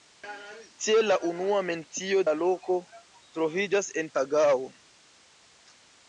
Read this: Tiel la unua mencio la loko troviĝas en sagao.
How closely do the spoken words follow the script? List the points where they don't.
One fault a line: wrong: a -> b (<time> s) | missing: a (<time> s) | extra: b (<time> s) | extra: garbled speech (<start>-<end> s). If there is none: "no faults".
no faults